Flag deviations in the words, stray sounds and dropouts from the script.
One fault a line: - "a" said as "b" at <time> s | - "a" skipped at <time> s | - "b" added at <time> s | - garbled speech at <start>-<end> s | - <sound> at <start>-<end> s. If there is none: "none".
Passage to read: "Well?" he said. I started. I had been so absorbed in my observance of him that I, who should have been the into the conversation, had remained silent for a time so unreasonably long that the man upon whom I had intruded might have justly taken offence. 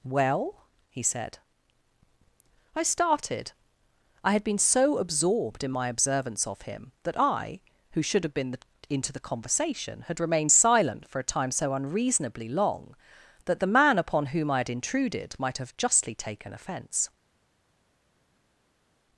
none